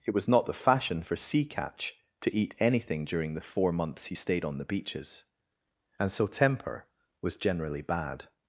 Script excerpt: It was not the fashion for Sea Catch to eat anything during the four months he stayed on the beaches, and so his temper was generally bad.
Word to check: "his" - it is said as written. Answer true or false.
false